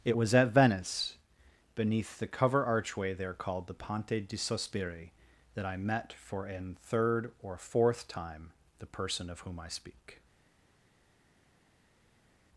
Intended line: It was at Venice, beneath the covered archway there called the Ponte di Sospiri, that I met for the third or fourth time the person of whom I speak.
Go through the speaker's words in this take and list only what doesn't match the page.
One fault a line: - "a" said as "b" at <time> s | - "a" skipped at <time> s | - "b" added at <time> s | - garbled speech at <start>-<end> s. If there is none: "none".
- "covered" said as "cover" at 2.3 s
- "the" said as "an" at 6.5 s